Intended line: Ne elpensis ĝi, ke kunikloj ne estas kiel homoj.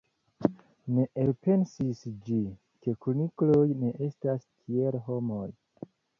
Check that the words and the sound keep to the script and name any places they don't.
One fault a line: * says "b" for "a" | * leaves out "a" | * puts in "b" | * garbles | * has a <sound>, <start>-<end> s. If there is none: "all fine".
all fine